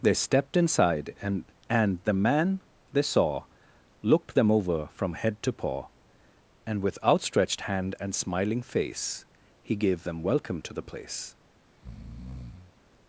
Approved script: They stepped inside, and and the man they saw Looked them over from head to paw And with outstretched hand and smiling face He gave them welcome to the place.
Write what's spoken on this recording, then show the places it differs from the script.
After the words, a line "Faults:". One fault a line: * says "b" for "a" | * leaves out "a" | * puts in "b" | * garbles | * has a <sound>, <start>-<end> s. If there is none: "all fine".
They stepped inside, and and the man they saw Looked them over from head to paw And with outstretched hand and smiling face He gave them welcome to the place.
Faults:
* has a breath, 11.7-12.7 s